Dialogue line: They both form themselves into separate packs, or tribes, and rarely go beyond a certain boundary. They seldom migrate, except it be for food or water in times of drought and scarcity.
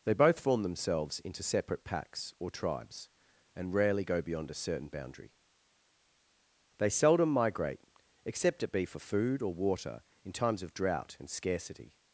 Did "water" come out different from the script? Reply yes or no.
no